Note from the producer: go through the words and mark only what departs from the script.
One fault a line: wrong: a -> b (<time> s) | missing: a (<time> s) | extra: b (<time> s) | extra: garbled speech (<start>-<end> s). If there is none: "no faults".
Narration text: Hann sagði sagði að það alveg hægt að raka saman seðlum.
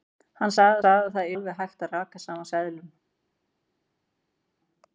no faults